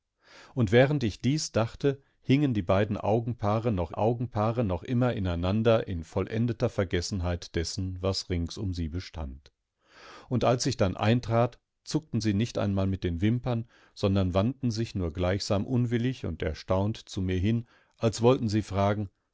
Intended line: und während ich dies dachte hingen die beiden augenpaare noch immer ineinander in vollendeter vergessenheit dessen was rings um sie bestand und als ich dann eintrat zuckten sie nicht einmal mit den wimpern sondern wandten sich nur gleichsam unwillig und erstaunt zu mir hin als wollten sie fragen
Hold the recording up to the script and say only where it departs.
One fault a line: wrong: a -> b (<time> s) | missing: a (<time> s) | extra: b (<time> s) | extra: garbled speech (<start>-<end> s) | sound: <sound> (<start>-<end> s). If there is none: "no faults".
extra: augenpaare noch (3.9 s)